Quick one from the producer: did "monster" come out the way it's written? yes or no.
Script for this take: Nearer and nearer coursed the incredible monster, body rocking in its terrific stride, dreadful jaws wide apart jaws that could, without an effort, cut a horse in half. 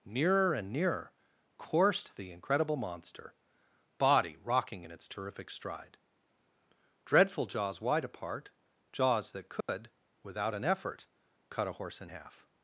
yes